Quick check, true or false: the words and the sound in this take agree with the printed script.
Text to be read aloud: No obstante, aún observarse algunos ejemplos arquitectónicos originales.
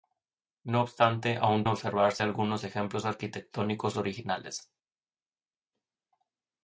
true